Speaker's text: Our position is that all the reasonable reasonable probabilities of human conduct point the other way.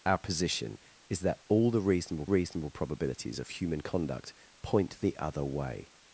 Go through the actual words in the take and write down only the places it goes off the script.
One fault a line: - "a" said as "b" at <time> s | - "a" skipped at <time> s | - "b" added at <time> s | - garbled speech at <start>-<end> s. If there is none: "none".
none